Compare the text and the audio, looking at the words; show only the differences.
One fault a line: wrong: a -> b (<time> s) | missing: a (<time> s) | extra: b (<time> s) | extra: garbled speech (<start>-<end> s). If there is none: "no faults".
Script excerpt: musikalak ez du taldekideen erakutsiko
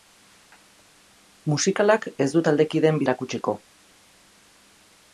no faults